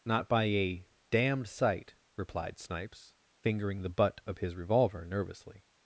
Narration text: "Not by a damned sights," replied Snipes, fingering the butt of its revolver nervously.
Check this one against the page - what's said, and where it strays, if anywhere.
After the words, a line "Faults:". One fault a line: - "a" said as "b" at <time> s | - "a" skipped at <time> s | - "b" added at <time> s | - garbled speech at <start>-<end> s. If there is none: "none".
"Not by a damned sight," replied Snipes, fingering the butt of his revolver nervously.
Faults:
- "sights" said as "sight" at 1.5 s
- "its" said as "his" at 4.4 s